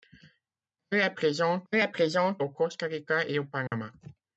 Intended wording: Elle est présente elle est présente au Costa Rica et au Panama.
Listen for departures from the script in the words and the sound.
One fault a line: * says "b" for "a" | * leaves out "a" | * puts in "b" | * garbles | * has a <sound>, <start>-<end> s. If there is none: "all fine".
* has a dropout, 3.7-3.7 s